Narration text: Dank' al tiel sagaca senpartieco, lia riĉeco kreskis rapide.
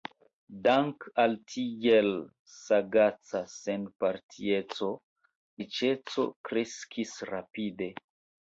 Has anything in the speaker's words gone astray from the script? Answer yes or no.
yes